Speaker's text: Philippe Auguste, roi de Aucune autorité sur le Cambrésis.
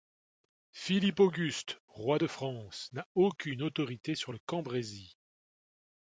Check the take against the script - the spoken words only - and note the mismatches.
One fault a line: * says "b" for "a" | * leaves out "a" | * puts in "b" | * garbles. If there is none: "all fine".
* puts in "France n'a"